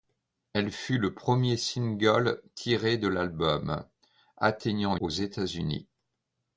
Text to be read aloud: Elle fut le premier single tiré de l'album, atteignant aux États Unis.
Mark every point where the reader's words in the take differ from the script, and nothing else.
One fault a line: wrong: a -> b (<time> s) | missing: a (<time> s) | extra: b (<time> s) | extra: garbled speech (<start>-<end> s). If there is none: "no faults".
no faults